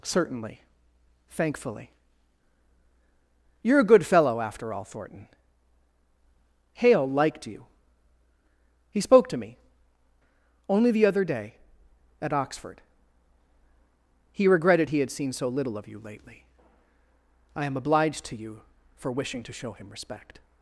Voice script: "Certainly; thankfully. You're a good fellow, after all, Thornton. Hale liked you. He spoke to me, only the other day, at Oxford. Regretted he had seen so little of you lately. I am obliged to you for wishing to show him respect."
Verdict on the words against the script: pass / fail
fail